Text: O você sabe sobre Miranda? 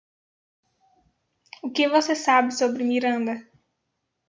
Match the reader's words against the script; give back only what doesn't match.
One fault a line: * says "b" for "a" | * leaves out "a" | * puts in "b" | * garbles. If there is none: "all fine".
* puts in "que"